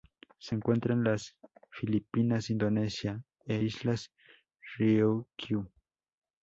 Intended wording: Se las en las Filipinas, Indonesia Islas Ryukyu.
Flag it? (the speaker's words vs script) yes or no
yes